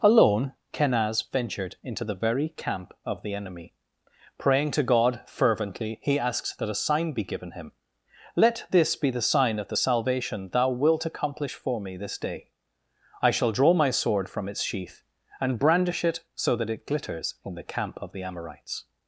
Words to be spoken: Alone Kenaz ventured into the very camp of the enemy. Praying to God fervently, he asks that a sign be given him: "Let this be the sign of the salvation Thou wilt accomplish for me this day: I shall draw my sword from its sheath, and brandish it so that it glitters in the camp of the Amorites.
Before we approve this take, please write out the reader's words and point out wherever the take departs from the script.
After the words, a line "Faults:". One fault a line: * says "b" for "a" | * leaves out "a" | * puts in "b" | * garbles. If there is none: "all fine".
Alone Kenaz ventured into the very camp of the enemy. Praying to God fervently, he asks that a sign be given him: "Let this be the sign of the salvation Thou wilt accomplish for me this day: I shall draw my sword from its sheath, and brandish it so that it glitters in the camp of the Amorites.
Faults:
all fine